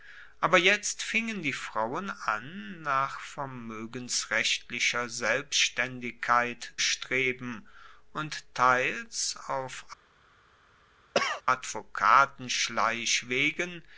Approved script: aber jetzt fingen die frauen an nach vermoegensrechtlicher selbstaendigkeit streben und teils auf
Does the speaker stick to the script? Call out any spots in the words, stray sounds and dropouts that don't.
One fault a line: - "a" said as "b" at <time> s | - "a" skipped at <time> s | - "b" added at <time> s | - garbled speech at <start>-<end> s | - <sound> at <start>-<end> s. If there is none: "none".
- cough at 11.1-11.4 s